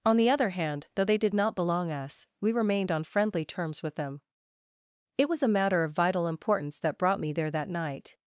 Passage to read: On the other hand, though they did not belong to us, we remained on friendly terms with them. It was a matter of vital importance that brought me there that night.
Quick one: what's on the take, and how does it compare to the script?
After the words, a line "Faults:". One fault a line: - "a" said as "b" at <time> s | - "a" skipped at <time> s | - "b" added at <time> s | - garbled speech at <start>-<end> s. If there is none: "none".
On the other hand, though they did not belong us, we remained on friendly terms with them. It was a matter of vital importance that brought me there that night.
Faults:
- "to" skipped at 1.9 s